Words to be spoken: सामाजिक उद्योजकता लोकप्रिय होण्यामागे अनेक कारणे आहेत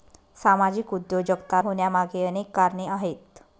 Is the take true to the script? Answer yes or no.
no